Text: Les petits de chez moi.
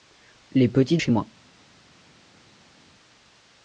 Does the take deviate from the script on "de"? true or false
true